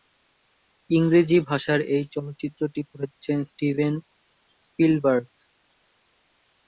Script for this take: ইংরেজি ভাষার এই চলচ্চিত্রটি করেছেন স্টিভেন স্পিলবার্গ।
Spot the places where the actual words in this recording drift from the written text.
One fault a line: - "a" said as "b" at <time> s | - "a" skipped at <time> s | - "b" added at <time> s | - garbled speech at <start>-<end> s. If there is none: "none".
none